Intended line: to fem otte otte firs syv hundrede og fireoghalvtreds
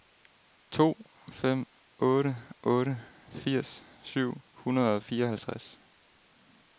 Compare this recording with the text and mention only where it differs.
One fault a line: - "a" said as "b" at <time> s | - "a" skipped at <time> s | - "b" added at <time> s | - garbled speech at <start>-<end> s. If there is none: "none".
none